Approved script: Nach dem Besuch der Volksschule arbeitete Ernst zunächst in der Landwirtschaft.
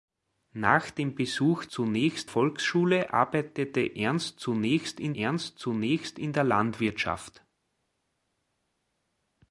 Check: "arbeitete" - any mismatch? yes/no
no